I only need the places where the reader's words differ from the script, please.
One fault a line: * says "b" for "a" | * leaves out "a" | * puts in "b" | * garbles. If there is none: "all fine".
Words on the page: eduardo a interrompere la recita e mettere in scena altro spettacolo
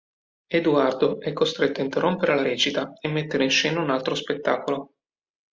* puts in "è costretto"
* puts in "un"